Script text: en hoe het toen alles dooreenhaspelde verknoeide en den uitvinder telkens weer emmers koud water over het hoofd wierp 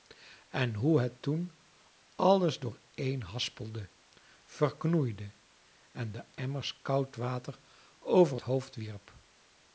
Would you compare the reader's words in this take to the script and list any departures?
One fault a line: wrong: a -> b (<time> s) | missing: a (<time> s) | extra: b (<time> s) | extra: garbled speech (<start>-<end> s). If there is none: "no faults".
missing: uitvinder telkens weer (6.3 s)
missing: het (8.4 s)